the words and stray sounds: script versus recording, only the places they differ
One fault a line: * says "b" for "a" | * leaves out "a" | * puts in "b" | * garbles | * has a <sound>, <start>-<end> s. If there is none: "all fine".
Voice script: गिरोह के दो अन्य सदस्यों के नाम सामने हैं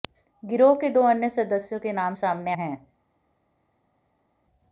all fine